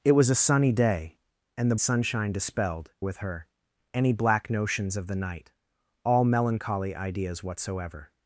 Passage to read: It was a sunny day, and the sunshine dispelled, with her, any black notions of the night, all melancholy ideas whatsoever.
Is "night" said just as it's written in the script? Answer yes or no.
yes